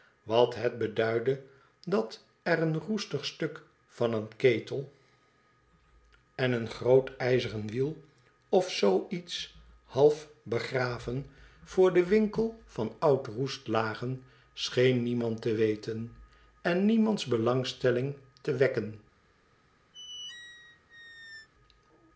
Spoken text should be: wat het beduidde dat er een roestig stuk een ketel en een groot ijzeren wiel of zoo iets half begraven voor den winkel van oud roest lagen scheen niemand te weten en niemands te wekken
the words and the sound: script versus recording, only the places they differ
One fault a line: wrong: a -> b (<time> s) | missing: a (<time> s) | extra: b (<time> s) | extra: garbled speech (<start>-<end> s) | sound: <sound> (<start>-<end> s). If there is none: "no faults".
extra: van (3.9 s)
extra: belangstelling (17.3 s)
sound: squeak (19.9-21.5 s)